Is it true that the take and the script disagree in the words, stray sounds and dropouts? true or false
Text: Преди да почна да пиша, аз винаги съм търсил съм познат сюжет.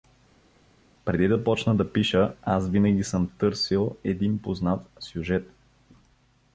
true